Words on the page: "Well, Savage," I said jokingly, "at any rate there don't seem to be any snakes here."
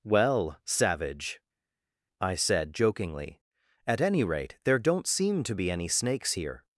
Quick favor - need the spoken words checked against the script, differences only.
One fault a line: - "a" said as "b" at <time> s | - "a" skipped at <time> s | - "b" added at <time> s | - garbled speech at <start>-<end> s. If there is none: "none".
none